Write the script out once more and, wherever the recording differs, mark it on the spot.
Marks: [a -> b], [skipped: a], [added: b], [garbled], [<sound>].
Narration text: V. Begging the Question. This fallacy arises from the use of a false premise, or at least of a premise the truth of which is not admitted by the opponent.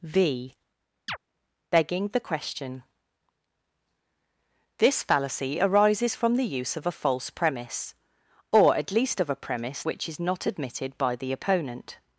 V. [chirp] Begging the Question. This fallacy arises from the use of a false premise, or at least of a premise [skipped: the truth of] which is not admitted by the opponent.